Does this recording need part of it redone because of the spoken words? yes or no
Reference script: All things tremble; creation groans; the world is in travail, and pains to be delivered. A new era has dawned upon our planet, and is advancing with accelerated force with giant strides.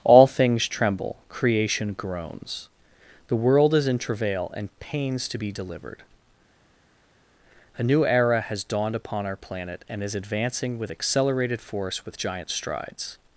no